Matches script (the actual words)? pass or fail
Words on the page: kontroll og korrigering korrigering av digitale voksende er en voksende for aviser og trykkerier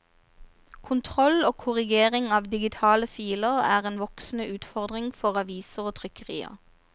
fail